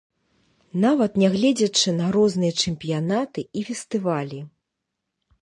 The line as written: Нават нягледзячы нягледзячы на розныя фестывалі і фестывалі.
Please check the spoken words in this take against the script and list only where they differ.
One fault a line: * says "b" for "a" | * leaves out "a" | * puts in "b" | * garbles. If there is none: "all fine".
* leaves out "нягледзячы"
* says "чэмпіянаты" for "фестывалі"